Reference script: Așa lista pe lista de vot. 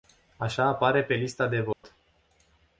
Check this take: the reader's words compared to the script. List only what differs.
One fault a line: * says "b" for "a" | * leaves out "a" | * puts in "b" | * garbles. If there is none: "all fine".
* says "apare" for "lista"